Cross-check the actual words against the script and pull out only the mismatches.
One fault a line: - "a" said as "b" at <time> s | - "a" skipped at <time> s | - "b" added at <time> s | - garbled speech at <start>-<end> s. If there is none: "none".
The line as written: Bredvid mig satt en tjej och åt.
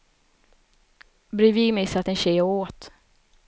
none